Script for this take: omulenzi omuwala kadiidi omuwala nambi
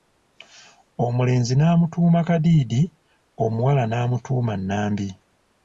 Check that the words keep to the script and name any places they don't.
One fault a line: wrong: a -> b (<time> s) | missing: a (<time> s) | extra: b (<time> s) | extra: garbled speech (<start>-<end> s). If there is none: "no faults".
wrong: omuwala -> n'amutuuma (1.6 s)
extra: n'amutuuma (3.9 s)